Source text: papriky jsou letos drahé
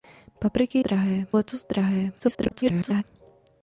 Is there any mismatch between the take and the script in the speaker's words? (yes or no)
yes